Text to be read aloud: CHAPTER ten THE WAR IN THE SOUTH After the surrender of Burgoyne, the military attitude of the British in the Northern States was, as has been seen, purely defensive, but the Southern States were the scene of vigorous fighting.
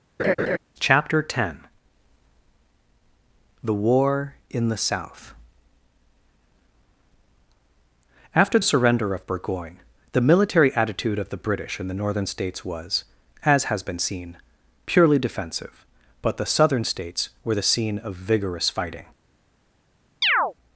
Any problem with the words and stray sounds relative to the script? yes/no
yes